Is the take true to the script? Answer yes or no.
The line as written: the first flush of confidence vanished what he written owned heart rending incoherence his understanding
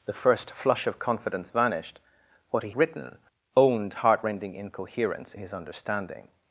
yes